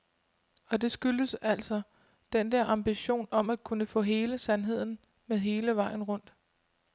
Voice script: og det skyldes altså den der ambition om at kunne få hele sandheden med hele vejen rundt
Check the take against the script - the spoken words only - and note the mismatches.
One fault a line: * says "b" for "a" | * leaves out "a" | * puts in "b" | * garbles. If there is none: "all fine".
all fine